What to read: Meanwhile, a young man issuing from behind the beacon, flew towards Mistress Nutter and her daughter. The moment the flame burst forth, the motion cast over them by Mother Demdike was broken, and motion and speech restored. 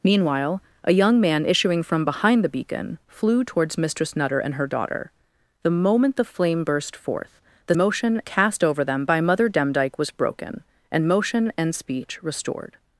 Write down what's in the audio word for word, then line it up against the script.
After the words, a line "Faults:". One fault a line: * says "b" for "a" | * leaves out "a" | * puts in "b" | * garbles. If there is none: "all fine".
Meanwhile, a young man issuing from behind the beacon, flew towards Mistress Nutter and her daughter. The moment the flame burst forth, the motion cast over them by Mother Demdike was broken, and motion and speech restored.
Faults:
all fine